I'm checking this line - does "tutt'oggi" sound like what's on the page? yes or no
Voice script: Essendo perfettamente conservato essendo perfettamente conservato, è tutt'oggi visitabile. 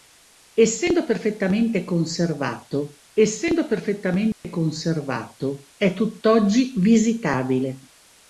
yes